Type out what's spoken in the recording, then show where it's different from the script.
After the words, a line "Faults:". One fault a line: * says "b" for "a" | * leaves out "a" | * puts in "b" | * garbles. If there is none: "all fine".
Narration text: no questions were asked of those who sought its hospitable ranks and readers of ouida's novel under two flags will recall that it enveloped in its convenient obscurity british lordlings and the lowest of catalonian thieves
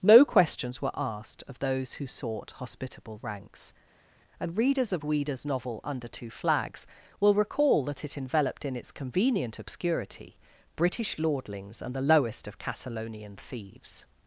no questions were asked of those who sought hospitable ranks and readers of ouida's novel under two flags will recall that it enveloped in its convenient obscurity british lordlings and the lowest of catalonian thieves
Faults:
* leaves out "its"